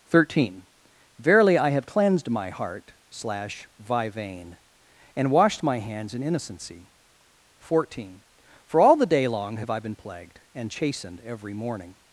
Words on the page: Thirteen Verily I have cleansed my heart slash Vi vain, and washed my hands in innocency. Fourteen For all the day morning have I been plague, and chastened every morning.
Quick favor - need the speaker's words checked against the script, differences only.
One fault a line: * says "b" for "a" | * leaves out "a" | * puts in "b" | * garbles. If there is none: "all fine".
* says "long" for "morning"
* says "plagued" for "plague"